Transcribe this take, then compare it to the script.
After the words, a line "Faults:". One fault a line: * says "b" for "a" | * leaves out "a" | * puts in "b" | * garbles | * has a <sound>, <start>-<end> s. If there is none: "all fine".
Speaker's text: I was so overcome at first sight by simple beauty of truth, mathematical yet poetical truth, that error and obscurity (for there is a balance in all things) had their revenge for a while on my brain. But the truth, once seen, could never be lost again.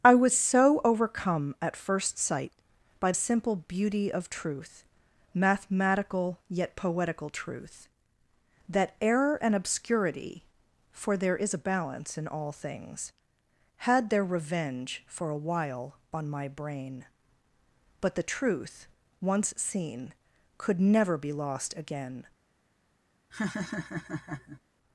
I was so overcome at first sight by simple beauty of truth, mathematical yet poetical truth, that error and obscurity (for there is a balance in all things) had their revenge for a while on my brain. But the truth, once seen, could never be lost again.
Faults:
* has a laugh, 23.3-24.6 s